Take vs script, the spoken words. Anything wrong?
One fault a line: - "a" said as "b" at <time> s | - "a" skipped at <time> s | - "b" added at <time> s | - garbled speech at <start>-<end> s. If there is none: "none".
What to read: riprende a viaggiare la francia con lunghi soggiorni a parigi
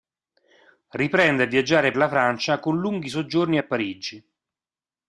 none